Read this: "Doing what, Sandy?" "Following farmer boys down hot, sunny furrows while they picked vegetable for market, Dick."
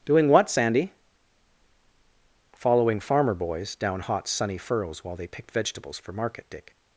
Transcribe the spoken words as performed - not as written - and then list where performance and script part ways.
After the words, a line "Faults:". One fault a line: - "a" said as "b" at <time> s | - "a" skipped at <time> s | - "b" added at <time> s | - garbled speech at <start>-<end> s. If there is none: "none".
"Doing what, Sandy?" "Following farmer boys down hot, sunny furrows while they picked vegetables for market, Dick."
Faults:
- "vegetable" said as "vegetables" at 5.5 s